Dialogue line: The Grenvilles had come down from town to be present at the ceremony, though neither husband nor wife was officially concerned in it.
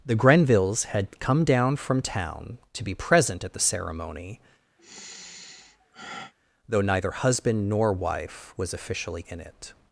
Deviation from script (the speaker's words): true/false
true